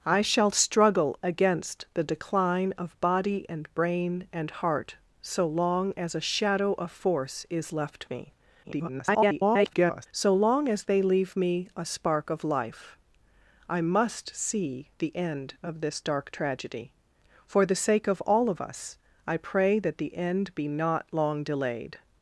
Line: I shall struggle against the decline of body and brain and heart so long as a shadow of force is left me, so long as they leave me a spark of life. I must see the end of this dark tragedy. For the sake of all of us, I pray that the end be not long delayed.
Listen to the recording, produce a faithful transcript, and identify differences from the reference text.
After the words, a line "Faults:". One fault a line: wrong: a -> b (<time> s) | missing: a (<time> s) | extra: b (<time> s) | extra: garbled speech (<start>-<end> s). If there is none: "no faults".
I shall struggle against the decline of body and brain and heart so long as a shadow of force is left me, [garbled] so long as they leave me a spark of life. I must see the end of this dark tragedy. For the sake of all of us, I pray that the end be not long delayed.
Faults:
extra: garbled speech (8.6-10.1 s)